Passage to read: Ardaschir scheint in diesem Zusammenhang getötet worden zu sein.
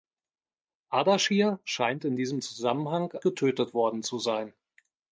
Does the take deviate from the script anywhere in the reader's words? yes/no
no